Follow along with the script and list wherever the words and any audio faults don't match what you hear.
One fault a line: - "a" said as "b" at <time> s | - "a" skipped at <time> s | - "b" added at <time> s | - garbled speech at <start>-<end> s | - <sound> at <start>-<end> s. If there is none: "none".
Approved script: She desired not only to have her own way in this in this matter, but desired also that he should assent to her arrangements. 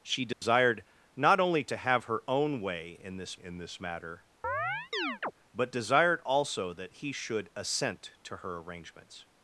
- dropout at 0.3-0.4 s
- chirp at 4.4-5.3 s